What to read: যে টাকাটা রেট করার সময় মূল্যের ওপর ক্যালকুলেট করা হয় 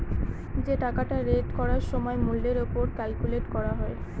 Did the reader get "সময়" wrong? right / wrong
right